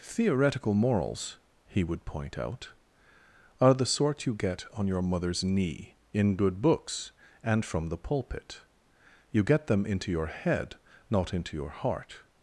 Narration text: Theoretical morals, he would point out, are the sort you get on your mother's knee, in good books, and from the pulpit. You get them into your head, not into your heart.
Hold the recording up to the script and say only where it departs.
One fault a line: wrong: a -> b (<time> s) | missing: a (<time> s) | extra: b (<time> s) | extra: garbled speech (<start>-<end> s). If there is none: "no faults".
no faults